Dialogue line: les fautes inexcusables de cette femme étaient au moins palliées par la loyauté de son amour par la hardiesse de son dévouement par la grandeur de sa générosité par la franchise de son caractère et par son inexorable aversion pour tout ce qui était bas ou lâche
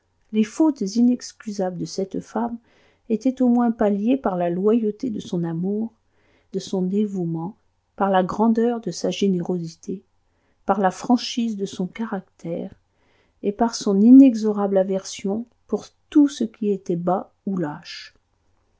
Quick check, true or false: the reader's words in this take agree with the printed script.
false